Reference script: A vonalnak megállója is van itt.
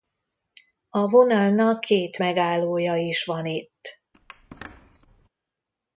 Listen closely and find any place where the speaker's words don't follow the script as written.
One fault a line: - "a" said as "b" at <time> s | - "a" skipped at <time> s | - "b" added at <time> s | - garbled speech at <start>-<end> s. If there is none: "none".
- "két" added at 1.8 s